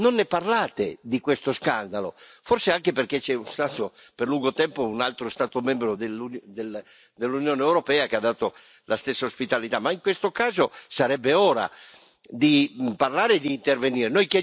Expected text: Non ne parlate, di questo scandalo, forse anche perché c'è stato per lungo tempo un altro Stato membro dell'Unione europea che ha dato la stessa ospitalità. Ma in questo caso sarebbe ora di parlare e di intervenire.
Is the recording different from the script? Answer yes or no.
no